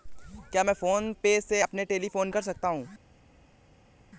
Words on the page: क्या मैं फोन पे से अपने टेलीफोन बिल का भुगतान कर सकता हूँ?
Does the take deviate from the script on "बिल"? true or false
true